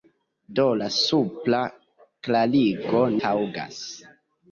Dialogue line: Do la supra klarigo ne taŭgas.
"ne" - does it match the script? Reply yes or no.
no